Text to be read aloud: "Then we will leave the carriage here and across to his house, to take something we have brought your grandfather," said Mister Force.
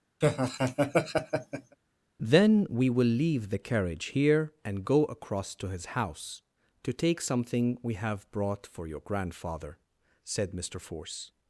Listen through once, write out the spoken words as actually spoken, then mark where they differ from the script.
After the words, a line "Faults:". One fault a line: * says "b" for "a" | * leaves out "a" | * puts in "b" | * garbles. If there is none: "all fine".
"Then we will leave the carriage here and go across to his house, to take something we have brought for your grandfather," said Mister Force.
Faults:
* puts in "go"
* puts in "for"